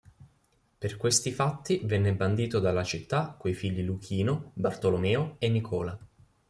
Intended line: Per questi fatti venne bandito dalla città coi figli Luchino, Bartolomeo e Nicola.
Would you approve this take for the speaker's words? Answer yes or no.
yes